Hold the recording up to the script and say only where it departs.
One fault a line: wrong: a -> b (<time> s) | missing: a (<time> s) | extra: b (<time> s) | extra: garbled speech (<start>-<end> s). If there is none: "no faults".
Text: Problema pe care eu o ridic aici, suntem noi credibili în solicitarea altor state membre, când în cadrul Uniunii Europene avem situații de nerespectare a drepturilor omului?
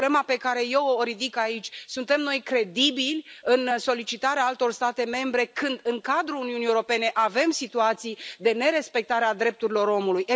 no faults